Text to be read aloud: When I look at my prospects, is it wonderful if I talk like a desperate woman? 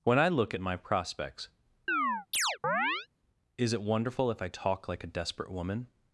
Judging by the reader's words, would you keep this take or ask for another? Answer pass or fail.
pass